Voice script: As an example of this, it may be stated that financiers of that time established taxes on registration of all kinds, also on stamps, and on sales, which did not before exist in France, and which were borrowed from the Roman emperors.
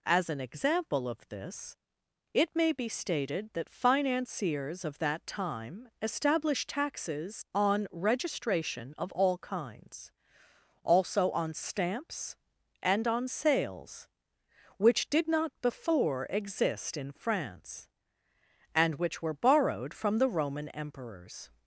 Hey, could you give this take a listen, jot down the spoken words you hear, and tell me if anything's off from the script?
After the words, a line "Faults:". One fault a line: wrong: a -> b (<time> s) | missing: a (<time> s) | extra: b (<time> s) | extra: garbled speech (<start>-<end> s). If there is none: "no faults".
As an example of this, it may be stated that financiers of that time established taxes on registration of all kinds, also on stamps, and on sales, which did not before exist in France, and which were borrowed from the Roman emperors.
Faults:
no faults